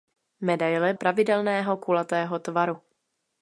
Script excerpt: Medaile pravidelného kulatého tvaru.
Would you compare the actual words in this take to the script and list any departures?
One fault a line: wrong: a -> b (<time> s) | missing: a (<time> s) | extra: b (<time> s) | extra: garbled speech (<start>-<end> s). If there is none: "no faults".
no faults